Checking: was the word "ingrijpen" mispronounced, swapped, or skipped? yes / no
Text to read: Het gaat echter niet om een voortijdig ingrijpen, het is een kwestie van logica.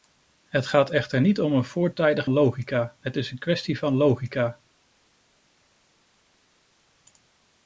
yes